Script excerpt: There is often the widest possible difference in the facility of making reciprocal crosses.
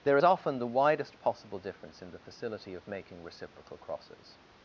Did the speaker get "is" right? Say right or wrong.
wrong